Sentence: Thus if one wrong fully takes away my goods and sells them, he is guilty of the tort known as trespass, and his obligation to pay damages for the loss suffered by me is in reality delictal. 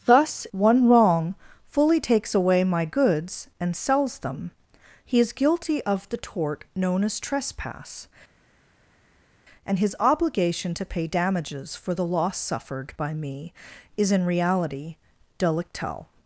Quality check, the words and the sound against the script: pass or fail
fail